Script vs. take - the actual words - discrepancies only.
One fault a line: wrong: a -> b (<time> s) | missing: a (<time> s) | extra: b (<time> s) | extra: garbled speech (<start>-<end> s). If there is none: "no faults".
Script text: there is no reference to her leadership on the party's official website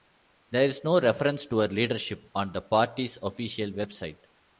no faults